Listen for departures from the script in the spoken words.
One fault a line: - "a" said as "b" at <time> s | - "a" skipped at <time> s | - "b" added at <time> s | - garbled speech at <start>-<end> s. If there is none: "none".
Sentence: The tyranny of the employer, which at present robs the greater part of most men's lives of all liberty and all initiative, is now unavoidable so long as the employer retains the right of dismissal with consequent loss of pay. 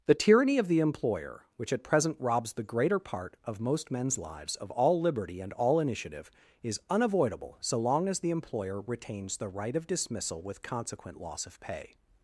- "now" skipped at 6.8 s